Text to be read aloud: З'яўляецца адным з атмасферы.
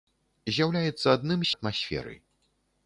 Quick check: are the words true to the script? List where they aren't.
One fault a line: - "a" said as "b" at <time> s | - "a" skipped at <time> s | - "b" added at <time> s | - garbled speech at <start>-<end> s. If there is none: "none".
none